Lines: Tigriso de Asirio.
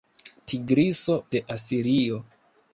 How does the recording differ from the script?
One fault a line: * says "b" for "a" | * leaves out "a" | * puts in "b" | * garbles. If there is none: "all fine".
all fine